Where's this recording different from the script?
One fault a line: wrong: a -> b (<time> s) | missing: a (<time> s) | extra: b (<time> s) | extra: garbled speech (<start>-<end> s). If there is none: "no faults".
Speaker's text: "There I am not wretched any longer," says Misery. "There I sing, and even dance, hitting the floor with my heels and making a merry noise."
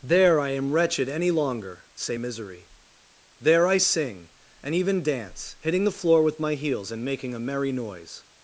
missing: not (0.7 s)
wrong: says -> say (1.9 s)